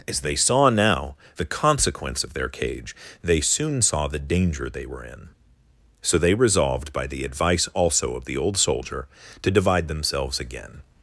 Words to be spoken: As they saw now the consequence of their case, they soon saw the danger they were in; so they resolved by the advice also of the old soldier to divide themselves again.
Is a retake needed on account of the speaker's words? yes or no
yes